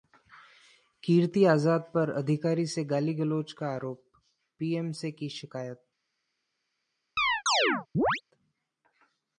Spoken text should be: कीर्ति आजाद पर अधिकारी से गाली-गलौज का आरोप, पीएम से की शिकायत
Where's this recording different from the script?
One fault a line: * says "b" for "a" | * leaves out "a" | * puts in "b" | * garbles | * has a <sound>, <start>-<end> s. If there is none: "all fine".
* has a chirp, 7.2-8.2 s